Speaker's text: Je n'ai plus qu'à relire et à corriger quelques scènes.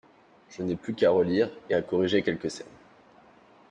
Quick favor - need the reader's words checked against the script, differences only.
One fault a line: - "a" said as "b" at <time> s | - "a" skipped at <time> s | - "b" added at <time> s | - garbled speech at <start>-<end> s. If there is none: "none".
none